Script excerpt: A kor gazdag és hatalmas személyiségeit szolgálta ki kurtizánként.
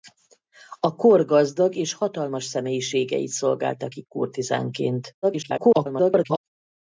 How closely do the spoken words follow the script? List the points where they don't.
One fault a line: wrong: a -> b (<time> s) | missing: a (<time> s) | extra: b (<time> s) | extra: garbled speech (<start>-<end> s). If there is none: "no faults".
extra: garbled speech (5.2-6.4 s)